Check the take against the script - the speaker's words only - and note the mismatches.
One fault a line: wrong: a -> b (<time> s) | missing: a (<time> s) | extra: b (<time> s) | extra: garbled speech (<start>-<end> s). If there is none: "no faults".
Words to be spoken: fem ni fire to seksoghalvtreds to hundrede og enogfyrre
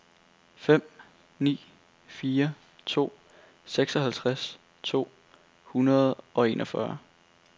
no faults